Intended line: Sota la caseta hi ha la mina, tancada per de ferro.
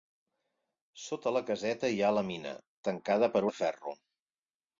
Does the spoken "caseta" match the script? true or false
true